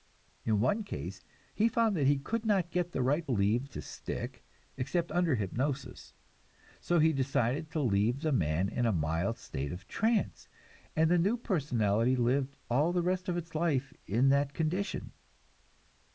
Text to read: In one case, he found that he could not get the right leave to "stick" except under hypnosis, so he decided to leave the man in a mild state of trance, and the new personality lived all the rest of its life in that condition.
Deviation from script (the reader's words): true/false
false